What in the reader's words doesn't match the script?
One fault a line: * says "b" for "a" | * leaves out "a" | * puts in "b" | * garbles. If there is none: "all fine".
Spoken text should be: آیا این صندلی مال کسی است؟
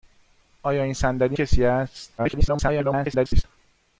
* leaves out "مال"
* garbles